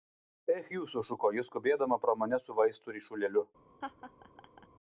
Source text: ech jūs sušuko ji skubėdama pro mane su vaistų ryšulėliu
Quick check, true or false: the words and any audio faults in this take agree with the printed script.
false